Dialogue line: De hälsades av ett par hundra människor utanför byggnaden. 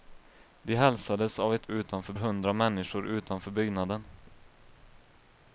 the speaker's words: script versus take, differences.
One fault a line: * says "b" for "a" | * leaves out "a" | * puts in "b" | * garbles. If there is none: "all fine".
* says "utanför" for "par"